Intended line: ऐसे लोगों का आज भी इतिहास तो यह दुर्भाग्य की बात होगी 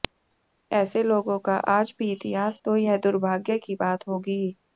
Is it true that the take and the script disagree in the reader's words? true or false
false